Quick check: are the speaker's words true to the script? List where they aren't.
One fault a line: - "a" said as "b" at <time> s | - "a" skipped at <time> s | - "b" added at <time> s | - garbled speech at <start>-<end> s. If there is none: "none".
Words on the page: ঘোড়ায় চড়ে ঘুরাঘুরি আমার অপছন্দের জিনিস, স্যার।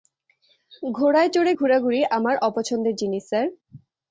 none